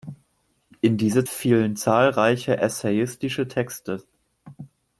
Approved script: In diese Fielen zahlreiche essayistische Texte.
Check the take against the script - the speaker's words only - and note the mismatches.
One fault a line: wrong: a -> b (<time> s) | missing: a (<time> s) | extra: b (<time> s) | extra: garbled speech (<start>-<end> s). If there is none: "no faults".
no faults